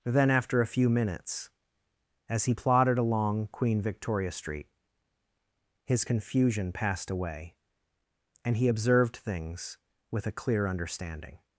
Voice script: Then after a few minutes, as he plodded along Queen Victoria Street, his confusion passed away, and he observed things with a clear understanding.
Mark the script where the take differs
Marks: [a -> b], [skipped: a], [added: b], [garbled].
Then after a few minutes, as he plodded along Queen Victoria Street, his confusion passed away, and he observed things with a clear understanding.